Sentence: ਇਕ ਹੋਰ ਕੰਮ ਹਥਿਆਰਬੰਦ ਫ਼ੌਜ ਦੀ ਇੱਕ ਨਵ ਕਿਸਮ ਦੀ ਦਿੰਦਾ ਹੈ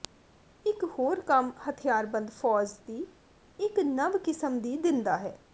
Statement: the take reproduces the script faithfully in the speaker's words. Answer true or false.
true